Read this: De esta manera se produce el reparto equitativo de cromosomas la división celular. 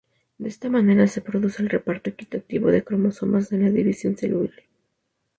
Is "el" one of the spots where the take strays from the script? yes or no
no